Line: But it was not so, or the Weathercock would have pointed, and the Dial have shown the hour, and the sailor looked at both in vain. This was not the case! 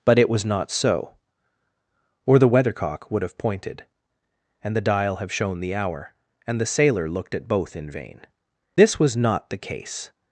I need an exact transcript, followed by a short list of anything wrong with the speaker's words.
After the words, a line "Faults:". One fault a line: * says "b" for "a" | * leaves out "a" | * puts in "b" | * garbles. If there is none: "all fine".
But it was not so, or the Weathercock would have pointed, and the Dial have shown the hour, and the sailor looked at both in vain. This was not the case!
Faults:
all fine